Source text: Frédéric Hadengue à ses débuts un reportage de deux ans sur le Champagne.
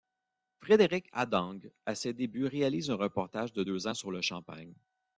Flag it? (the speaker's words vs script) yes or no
yes